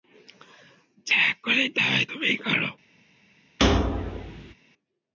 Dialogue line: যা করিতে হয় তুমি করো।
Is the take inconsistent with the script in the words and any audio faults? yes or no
yes